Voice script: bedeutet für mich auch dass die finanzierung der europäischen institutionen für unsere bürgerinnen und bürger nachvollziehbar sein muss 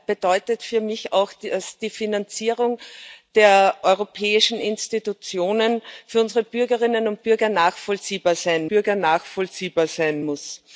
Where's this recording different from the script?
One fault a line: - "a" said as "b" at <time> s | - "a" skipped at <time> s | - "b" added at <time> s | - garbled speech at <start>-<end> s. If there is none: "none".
- "bürger nachvollziehbar sein" added at 8.7 s